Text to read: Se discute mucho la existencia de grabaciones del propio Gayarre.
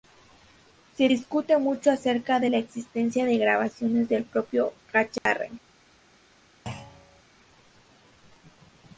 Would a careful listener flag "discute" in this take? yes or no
no